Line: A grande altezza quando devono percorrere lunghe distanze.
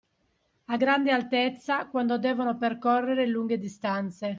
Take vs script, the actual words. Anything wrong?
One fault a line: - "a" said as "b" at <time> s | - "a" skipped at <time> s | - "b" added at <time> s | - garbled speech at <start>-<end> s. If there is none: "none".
none